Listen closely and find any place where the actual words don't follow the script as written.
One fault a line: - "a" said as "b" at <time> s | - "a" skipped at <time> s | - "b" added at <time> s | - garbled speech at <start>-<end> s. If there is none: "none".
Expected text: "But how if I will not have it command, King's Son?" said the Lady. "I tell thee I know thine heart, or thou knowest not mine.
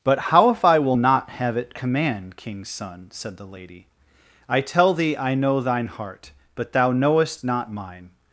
- "or" said as "but" at 6.5 s